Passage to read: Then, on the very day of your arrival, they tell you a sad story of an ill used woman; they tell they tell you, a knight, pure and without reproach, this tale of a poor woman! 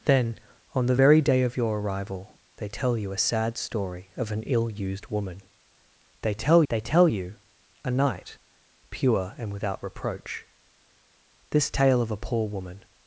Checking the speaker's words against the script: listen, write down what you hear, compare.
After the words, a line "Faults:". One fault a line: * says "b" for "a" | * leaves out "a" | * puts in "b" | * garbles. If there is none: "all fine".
Then, on the very day of your arrival, they tell you a sad story of an ill used woman; they tell they tell you, a knight, pure and without reproach, this tale of a poor woman!
Faults:
all fine